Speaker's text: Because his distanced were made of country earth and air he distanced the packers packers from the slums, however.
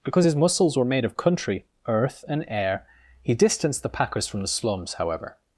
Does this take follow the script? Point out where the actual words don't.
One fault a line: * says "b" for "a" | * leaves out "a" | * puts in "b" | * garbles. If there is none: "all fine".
* says "muscles" for "distanced"
* leaves out "packers"